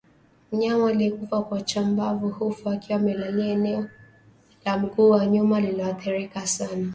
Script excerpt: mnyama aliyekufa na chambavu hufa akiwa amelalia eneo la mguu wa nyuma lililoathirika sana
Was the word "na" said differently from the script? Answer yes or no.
yes